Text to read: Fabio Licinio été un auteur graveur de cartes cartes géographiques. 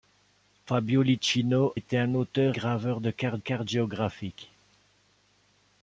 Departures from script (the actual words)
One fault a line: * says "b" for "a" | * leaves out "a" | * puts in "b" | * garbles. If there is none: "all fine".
all fine